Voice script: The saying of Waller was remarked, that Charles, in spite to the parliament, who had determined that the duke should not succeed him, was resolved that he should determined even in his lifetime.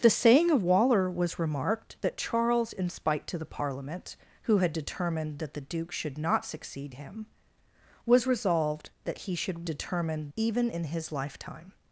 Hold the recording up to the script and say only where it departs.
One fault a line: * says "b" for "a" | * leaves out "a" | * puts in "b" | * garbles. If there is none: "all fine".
all fine